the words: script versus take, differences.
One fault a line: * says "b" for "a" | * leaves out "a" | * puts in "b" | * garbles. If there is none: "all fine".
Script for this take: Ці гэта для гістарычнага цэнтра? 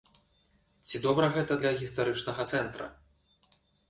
* puts in "добра"